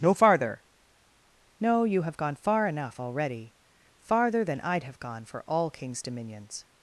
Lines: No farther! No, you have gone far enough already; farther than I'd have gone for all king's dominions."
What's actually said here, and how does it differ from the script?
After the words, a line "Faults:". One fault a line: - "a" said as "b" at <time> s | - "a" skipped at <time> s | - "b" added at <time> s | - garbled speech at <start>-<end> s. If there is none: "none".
No farther! No, you have gone far enough already; farther than I'd have gone for all king's dominions."
Faults:
none